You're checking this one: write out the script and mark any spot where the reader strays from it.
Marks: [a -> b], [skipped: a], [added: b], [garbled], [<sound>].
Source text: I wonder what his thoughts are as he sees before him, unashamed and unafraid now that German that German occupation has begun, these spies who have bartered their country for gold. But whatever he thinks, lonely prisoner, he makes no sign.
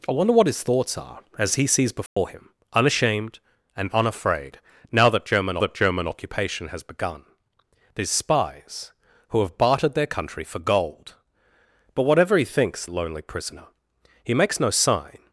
I wonder what his thoughts are as he sees before [dropout] him, unashamed and unafraid now that German that German occupation has begun, these spies who have bartered their country for gold. But whatever he thinks, lonely prisoner, he makes no sign.